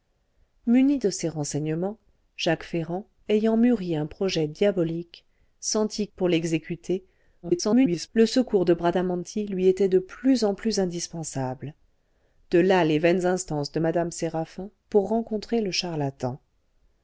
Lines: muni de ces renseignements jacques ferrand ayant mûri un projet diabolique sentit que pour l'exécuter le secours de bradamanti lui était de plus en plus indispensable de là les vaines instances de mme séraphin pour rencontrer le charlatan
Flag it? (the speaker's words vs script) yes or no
yes